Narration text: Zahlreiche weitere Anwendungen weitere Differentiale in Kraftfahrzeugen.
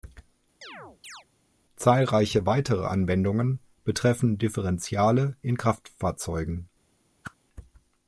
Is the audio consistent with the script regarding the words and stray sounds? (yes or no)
no